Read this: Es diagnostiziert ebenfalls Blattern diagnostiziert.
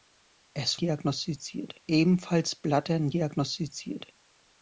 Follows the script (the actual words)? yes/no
yes